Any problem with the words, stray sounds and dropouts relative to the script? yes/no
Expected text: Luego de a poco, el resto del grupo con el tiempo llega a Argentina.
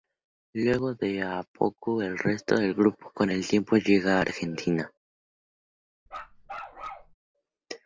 yes